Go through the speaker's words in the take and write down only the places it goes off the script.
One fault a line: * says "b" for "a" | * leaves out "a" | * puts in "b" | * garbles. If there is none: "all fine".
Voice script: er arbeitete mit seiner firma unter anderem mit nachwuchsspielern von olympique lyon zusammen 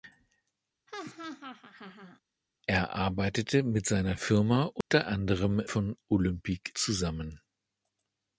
* leaves out "mit nachwuchsspielern"
* leaves out "lyon"